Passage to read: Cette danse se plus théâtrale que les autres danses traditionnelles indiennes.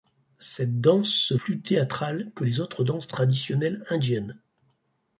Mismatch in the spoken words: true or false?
false